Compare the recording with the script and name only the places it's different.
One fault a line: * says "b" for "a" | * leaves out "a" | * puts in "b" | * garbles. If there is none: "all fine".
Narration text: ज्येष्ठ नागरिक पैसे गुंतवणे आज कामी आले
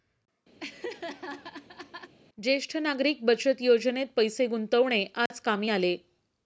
* puts in "बचत योजनेत"